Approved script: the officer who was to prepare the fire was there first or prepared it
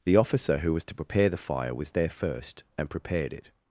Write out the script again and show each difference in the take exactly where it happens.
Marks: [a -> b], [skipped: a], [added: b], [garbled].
the officer who was to prepare the fire was there first [or -> and] prepared it